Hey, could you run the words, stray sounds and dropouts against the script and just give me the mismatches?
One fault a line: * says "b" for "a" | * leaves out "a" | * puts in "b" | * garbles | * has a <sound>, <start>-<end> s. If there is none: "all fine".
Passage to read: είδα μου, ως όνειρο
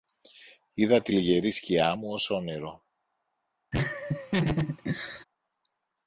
* puts in "τη λυγερή σκιά"
* has a laugh, 3.7-5.2 s